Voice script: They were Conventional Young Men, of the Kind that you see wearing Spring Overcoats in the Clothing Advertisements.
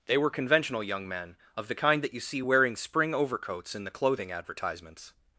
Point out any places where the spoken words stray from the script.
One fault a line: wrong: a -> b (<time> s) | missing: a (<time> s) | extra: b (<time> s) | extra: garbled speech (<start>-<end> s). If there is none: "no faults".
no faults